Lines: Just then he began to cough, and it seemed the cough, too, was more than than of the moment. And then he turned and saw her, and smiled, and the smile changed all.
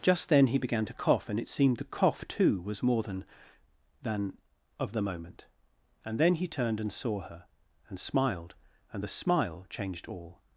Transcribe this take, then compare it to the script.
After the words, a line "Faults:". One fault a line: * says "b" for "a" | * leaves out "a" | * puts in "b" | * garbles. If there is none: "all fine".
Just then he began to cough, and it seemed the cough, too, was more than than of the moment. And then he turned and saw her, and smiled, and the smile changed all.
Faults:
all fine